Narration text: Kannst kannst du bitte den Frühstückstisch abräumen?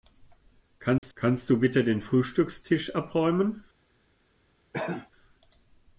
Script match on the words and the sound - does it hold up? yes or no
no